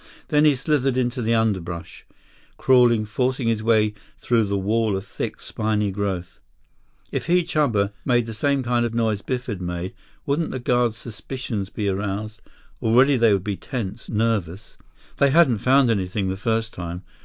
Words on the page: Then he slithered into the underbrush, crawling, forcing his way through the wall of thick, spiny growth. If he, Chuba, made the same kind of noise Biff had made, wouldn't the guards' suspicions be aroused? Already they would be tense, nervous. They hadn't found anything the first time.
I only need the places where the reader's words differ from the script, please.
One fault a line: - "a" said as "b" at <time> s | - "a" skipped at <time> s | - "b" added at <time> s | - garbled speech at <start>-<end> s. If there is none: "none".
none